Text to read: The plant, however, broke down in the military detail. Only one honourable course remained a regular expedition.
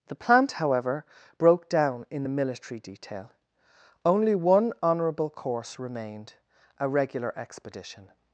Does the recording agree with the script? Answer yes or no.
yes